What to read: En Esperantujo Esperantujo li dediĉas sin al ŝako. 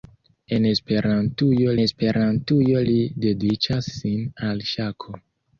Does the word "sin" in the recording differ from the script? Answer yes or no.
no